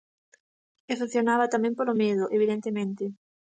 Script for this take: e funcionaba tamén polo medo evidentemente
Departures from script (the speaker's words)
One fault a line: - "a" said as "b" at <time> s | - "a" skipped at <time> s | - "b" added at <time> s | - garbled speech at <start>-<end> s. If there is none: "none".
none